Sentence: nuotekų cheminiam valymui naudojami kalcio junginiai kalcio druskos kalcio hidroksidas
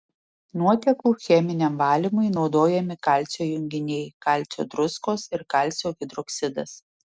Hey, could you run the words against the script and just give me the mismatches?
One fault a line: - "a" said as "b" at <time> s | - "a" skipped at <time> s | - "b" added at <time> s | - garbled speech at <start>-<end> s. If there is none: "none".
- "ir" added at 5.4 s